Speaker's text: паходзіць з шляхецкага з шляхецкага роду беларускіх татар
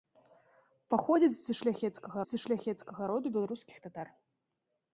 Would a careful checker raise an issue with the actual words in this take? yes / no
no